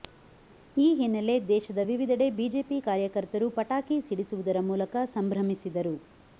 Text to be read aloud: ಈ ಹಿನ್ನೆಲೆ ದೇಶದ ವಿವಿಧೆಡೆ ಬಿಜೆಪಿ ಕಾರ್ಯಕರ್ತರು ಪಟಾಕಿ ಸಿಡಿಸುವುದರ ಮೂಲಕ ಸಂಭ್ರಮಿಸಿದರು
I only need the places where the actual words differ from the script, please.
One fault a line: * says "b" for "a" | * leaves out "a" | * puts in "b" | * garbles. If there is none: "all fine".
all fine